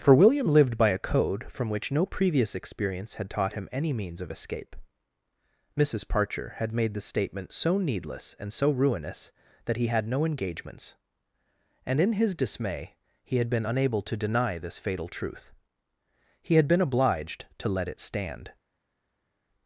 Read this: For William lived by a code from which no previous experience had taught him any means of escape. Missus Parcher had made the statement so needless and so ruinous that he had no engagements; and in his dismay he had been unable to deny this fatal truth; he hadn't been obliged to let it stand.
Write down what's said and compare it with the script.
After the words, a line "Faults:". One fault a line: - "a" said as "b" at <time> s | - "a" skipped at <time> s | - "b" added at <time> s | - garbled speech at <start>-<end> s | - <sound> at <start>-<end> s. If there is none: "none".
For William lived by a code from which no previous experience had taught him any means of escape. Missus Parcher had made the statement so needless and so ruinous that he had no engagements; and in his dismay he had been unable to deny this fatal truth; he had been obliged to let it stand.
Faults:
- "hadn't" said as "had" at 16.6 s